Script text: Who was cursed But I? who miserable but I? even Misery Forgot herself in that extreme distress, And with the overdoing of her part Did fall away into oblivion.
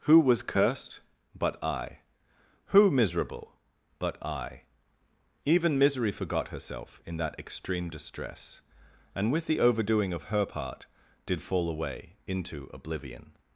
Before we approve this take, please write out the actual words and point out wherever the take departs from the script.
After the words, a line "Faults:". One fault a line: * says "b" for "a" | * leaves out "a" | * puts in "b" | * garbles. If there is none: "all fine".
Who was cursed But I? who miserable but I? even Misery Forgot herself in that extreme distress, And with the overdoing of her part Did fall away into oblivion.
Faults:
all fine